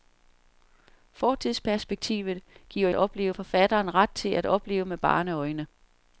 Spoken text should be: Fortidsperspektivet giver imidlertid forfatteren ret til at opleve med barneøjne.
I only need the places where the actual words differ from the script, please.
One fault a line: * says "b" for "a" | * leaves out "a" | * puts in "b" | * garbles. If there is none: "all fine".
* says "opleve" for "imidlertid"